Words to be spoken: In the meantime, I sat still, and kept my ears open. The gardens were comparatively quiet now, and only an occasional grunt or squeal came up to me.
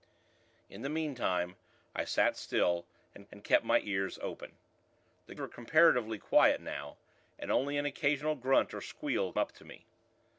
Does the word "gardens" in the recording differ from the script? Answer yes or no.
yes